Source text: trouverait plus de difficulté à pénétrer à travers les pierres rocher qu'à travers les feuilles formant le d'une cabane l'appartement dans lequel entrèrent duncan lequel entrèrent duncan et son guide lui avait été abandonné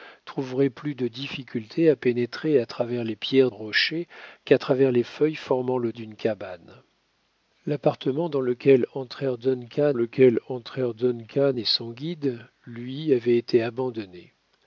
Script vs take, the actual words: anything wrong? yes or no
no